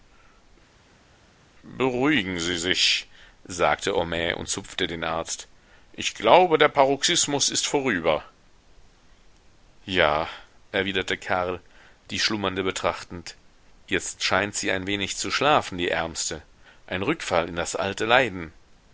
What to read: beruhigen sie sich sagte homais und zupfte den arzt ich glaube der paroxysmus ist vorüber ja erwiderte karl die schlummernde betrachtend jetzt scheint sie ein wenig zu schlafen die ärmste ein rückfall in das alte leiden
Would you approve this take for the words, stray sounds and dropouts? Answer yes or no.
yes